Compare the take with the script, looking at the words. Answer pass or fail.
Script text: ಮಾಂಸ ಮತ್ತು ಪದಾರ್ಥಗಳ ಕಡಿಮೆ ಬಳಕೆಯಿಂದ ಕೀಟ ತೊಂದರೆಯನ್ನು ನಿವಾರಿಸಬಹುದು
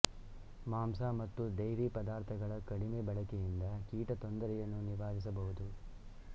fail